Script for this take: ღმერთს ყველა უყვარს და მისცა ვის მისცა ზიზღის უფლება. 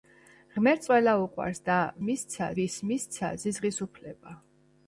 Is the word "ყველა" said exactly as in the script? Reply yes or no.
yes